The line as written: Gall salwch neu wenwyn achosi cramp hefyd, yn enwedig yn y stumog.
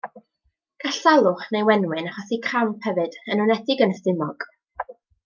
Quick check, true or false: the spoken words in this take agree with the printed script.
true